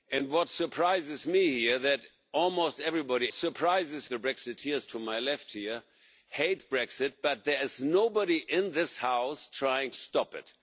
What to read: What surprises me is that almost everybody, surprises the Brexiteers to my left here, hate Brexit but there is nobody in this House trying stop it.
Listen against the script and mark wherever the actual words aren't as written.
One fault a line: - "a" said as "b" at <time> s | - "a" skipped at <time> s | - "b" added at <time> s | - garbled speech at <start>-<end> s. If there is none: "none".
none